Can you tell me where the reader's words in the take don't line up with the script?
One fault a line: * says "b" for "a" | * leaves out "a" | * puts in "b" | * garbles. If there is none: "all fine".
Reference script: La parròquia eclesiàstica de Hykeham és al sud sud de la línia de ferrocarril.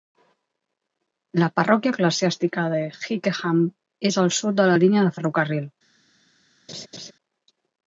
* leaves out "sud"